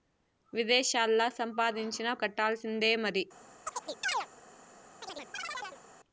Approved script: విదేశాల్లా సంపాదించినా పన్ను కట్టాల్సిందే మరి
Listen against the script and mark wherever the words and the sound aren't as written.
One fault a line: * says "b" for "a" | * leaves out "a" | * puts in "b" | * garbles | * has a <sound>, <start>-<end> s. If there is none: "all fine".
* leaves out "పన్ను"
* has a chirp, 3.7-4.3 s
* has a chirp, 5.0-5.8 s